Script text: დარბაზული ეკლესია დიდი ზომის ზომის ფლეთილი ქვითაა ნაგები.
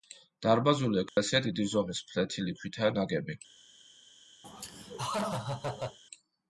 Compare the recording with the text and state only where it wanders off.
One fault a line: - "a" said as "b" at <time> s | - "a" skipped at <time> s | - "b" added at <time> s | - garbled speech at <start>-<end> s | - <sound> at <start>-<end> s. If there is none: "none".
- dropout at 1.1-1.2 s
- "ზომის" skipped at 2.0 s
- laugh at 4.4-6.0 s